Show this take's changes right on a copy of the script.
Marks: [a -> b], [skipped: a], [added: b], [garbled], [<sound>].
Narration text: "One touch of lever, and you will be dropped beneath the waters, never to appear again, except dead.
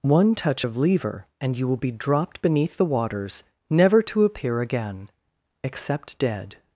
"One touch of lever, and you will be dropped beneath the waters, never to appear again, except dead.